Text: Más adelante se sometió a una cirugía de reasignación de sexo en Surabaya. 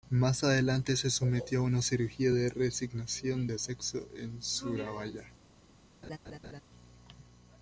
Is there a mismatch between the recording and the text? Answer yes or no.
no